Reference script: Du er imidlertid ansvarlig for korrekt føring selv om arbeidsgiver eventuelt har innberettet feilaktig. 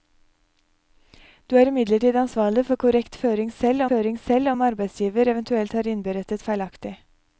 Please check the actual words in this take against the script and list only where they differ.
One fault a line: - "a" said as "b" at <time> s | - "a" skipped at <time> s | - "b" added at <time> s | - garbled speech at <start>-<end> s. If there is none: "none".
- "føring selv" added at 3.9 s